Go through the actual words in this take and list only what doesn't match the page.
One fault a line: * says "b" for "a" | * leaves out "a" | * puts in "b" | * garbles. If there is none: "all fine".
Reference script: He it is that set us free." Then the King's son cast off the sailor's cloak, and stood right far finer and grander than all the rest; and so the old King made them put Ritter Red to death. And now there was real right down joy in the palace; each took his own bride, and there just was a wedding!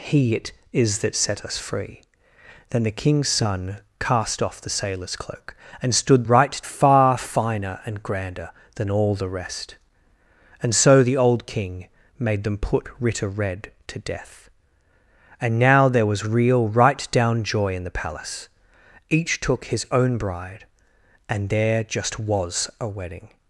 all fine